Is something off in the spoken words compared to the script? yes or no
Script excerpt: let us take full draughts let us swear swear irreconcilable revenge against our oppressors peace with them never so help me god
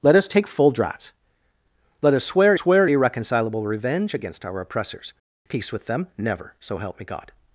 no